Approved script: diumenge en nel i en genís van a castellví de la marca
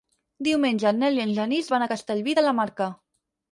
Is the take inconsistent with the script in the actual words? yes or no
no